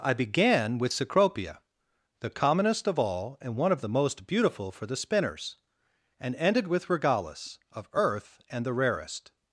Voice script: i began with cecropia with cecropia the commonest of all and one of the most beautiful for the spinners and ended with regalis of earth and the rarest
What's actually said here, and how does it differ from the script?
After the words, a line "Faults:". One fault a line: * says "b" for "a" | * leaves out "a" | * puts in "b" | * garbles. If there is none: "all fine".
i began with cecropia the commonest of all and one of the most beautiful for the spinners and ended with regalis of earth and the rarest
Faults:
* leaves out "with cecropia"